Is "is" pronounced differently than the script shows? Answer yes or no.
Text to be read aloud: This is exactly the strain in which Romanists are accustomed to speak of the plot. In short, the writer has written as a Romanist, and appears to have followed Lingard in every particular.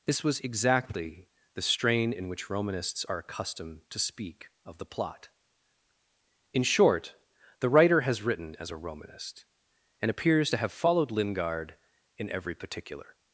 yes